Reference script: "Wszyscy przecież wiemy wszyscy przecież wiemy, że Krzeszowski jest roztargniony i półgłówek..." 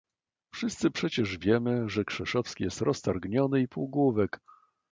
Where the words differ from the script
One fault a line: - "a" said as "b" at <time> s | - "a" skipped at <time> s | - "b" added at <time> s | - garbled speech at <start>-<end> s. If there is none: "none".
- "wszyscy przecież wiemy" skipped at 1.9 s